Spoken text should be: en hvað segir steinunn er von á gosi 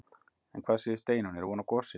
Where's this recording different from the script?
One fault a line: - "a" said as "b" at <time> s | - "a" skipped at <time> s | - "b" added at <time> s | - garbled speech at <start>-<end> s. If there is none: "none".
none